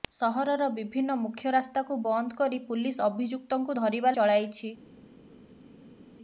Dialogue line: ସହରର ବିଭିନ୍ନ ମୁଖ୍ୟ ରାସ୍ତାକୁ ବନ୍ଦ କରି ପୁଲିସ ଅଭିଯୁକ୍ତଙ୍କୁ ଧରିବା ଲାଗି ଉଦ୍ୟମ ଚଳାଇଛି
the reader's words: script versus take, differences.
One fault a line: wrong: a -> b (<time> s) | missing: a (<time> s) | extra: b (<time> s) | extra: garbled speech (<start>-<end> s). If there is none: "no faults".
missing: ଲାଗି ଉଦ୍ୟମ (4.2 s)